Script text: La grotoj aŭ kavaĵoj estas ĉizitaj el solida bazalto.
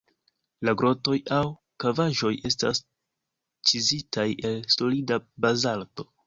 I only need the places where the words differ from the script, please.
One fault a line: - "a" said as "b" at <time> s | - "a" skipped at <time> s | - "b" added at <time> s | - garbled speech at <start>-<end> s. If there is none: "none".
none